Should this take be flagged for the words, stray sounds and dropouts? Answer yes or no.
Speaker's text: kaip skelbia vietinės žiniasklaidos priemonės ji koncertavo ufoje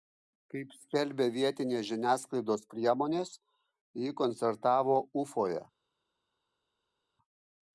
no